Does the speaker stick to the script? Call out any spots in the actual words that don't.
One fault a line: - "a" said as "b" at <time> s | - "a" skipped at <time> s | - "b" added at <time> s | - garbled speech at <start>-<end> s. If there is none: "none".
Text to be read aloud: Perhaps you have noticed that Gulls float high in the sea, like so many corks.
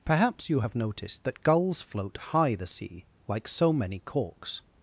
- "in" skipped at 2.5 s